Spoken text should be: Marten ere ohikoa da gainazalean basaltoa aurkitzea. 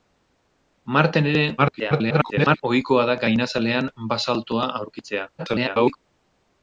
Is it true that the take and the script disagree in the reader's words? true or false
true